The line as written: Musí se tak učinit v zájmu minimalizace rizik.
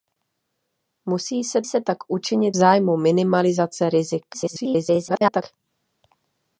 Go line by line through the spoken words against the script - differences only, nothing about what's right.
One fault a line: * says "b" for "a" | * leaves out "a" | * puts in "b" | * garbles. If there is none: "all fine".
* puts in "se"
* leaves out "v"
* garbles